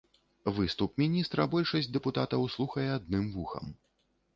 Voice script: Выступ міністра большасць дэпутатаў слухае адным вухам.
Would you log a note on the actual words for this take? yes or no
no